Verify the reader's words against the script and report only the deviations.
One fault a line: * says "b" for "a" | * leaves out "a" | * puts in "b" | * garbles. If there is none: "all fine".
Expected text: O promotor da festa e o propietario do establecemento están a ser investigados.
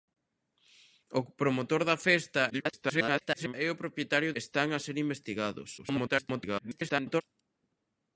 * garbles
* leaves out "do establecemento"
* garbles